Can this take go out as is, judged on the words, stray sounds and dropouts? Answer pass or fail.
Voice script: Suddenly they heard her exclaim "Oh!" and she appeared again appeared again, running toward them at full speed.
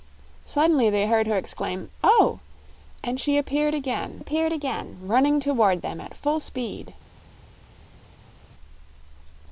pass